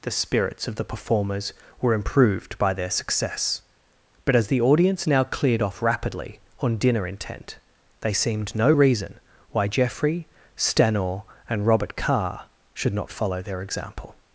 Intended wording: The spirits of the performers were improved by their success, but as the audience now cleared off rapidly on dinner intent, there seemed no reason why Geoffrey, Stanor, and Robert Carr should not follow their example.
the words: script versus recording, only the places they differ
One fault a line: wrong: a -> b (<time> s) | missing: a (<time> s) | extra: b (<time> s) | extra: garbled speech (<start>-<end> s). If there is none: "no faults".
wrong: there -> they (8.0 s)